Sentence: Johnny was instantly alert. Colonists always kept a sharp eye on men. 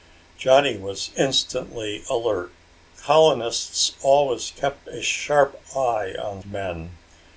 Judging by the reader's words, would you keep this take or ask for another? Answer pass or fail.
pass